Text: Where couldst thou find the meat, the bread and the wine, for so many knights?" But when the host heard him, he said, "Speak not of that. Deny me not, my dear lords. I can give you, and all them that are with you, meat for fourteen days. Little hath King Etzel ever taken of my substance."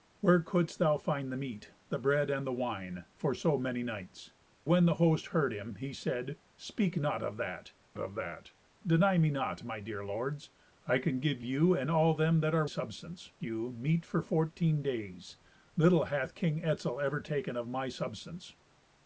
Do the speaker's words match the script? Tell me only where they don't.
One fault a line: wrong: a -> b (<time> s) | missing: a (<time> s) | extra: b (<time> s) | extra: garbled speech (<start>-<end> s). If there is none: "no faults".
missing: But (4.3 s)
extra: of that (8.0 s)
wrong: with -> substance (12.6 s)